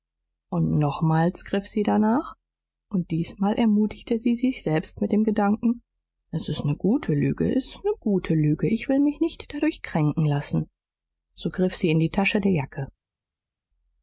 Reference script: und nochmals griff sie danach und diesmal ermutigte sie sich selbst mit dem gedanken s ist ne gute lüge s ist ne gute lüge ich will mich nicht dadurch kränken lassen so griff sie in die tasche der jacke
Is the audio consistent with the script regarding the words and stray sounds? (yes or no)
yes